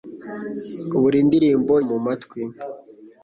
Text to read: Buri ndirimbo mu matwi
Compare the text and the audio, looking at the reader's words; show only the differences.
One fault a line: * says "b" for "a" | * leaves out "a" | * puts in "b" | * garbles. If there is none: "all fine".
all fine